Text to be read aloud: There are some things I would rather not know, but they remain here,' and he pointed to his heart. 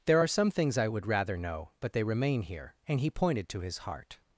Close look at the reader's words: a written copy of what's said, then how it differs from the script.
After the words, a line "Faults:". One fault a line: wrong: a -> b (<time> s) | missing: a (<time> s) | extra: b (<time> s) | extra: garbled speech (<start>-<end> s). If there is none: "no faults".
There are some things I would rather know, but they remain here,' and he pointed to his heart.
Faults:
missing: not (1.4 s)